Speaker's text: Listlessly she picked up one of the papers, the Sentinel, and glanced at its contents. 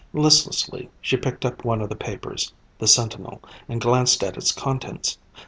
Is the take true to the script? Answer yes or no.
yes